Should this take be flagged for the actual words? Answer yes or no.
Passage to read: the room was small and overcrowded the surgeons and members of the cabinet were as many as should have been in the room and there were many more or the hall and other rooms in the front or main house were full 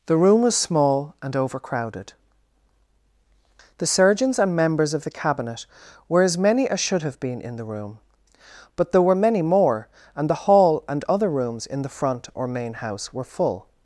yes